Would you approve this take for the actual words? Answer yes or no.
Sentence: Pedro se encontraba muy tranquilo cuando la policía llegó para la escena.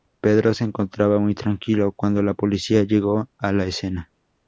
no